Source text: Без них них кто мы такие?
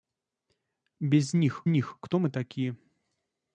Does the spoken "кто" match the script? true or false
true